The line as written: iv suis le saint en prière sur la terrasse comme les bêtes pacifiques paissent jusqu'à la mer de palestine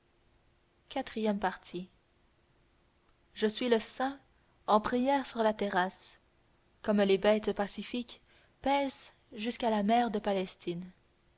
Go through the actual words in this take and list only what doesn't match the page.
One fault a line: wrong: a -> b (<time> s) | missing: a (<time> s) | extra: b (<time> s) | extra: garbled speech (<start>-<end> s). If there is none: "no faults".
extra: je (3.4 s)